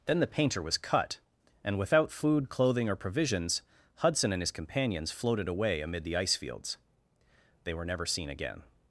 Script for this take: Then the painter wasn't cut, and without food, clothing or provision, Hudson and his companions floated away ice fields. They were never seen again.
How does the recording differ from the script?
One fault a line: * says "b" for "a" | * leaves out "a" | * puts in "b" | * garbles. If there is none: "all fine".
* says "was" for "wasn't"
* says "provisions" for "provision"
* puts in "amid the"